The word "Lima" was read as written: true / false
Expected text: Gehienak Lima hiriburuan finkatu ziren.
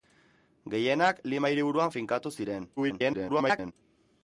true